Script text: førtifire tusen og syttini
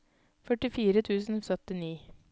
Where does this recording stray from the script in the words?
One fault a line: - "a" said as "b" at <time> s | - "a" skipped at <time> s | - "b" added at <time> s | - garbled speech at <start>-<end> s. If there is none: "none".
none